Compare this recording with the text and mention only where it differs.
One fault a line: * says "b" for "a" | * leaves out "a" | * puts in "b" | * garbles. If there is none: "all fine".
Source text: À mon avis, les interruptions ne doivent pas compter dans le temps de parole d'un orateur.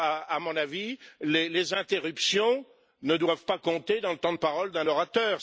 all fine